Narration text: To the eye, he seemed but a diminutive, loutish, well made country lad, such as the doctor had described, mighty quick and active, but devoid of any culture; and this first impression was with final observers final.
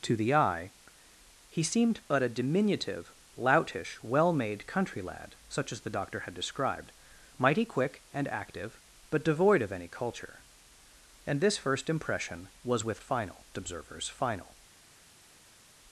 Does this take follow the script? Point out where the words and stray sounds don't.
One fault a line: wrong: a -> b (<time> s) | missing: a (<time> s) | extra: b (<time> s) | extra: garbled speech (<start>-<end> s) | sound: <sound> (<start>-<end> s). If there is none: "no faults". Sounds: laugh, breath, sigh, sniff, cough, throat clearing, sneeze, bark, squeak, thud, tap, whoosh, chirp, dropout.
no faults